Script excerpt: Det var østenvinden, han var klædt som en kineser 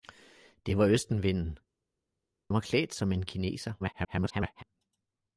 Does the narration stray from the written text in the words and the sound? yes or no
yes